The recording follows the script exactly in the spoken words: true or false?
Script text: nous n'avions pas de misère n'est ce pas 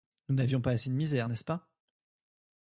false